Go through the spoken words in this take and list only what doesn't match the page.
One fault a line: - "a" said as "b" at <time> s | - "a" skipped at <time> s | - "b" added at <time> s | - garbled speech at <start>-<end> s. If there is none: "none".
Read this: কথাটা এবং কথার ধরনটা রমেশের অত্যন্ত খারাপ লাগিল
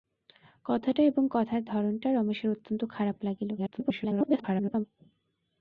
- garbled speech at 3.6-4.9 s